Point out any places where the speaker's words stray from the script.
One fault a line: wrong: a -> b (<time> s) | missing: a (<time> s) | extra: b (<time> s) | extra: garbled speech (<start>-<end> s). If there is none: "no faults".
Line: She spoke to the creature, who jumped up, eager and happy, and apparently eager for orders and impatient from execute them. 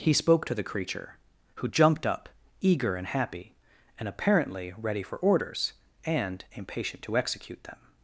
wrong: She -> He (0.0 s)
wrong: eager -> ready (4.8 s)
wrong: from -> to (7.0 s)